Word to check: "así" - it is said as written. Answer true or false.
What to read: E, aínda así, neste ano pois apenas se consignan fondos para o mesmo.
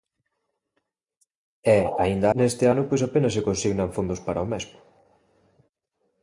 false